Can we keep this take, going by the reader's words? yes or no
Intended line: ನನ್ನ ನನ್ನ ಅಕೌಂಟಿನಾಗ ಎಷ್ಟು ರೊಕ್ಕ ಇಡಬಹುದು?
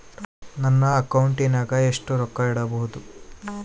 no